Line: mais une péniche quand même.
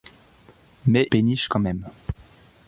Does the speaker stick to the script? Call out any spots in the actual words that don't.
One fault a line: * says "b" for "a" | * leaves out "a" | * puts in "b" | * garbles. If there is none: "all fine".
* leaves out "une"